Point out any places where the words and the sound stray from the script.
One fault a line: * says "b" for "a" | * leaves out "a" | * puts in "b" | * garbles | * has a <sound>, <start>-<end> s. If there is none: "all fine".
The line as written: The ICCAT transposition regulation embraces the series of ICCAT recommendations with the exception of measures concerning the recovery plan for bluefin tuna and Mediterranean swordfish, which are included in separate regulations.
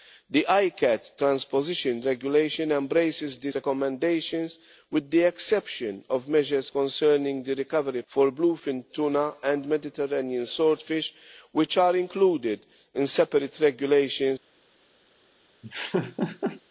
* leaves out "series of ICCAT"
* leaves out "plan"
* has a laugh, 15.6-16.6 s